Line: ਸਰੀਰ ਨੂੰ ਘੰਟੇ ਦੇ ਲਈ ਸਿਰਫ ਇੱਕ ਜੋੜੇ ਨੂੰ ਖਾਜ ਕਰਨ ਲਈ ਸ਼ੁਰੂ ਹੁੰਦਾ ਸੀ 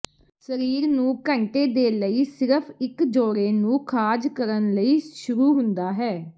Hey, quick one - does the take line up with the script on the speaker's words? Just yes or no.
no